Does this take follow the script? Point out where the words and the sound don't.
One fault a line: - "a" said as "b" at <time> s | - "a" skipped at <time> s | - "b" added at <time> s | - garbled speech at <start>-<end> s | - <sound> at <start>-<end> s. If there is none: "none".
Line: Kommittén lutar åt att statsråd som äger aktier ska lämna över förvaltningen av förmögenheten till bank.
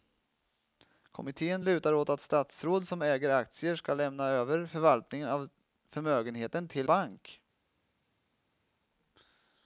none